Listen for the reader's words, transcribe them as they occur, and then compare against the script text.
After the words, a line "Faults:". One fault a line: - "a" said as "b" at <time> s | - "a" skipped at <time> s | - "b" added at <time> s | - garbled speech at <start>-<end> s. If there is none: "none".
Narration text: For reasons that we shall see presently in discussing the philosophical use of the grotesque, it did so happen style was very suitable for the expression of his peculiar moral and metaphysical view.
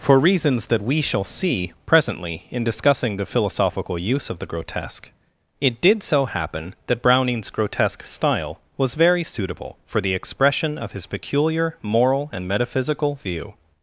For reasons that we shall see presently in discussing the philosophical use of the grotesque, it did so happen that Browning's grotesque style was very suitable for the expression of his peculiar moral and metaphysical view.
Faults:
- "that Browning's grotesque" added at 6.9 s